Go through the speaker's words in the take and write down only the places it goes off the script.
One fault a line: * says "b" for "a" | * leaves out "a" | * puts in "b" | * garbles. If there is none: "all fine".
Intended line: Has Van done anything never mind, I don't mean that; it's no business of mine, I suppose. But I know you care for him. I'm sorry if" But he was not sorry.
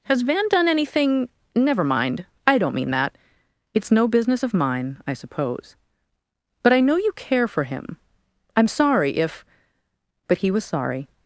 * leaves out "not"